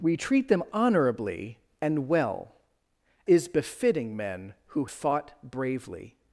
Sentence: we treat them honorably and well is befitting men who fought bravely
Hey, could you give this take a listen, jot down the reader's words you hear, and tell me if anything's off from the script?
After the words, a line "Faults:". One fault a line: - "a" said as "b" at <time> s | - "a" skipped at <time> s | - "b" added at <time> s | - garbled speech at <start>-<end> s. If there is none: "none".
we treat them honorably and well is befitting men who fought bravely
Faults:
none